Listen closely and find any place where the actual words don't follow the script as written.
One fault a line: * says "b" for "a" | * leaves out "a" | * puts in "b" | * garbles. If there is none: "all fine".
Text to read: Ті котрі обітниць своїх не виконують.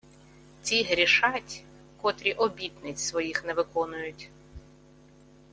* puts in "грішать"